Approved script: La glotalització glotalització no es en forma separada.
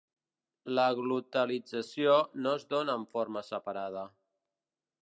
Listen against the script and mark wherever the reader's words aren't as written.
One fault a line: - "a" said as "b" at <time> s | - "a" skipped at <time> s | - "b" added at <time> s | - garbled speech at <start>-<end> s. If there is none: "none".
- "glotalització" skipped at 2.2 s
- "dóna" added at 2.7 s